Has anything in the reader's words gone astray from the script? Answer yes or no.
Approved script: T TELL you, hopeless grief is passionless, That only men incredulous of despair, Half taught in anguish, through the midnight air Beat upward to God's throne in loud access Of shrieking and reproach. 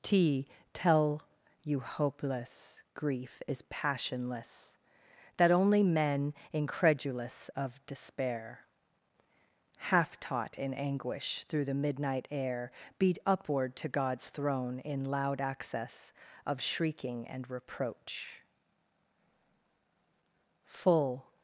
yes